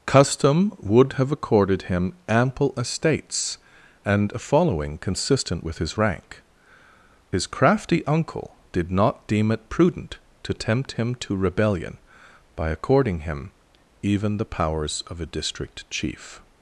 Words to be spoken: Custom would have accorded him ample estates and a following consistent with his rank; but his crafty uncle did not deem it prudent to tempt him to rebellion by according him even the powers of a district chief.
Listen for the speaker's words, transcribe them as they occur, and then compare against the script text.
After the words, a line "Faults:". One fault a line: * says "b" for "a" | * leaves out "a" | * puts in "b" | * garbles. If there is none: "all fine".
Custom would have accorded him ample estates and a following consistent with his rank; his crafty uncle did not deem it prudent to tempt him to rebellion by according him even the powers of a district chief.
Faults:
* leaves out "but"